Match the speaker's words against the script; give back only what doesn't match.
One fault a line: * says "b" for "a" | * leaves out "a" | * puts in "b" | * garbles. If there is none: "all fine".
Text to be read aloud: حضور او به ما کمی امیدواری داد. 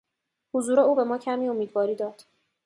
all fine